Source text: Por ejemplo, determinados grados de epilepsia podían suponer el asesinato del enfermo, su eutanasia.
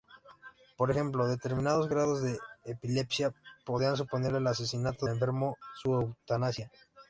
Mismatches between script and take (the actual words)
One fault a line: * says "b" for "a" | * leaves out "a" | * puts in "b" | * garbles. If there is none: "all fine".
* leaves out "del"